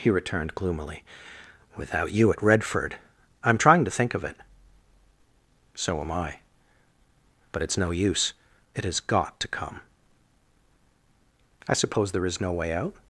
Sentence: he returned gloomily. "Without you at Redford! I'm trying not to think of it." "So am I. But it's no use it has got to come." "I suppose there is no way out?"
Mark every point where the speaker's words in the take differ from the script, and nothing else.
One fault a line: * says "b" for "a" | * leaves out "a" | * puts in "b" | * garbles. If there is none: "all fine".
* leaves out "not"